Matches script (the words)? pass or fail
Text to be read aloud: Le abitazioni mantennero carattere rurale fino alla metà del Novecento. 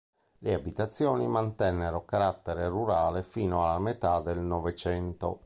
pass